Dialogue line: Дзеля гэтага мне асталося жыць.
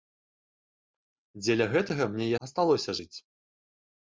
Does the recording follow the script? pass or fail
pass